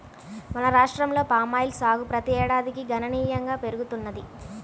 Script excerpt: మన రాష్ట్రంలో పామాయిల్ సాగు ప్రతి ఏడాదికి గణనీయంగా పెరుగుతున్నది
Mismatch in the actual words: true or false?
false